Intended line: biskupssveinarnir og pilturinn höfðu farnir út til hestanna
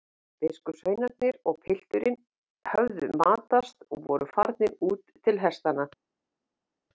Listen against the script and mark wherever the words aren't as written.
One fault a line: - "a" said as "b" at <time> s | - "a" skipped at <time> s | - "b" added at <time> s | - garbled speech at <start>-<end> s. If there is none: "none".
- "matast og voru" added at 3.2 s